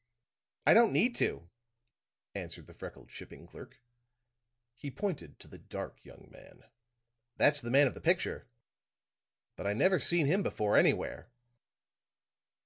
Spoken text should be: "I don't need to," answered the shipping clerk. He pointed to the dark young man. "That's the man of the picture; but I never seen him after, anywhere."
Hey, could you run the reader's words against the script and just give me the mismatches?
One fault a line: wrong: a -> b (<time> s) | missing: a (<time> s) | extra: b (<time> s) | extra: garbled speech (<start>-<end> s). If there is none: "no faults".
extra: freckled (2.7 s)
wrong: after -> before (10.4 s)